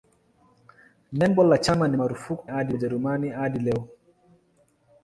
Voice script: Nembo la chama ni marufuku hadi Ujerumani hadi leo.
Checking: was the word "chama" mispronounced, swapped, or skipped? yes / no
no